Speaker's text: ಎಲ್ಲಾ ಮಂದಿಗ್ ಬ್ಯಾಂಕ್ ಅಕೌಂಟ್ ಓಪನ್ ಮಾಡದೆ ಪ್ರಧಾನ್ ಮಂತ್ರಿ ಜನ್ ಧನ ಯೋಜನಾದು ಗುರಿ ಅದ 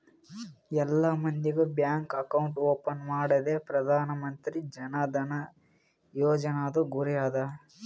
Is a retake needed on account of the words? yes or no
no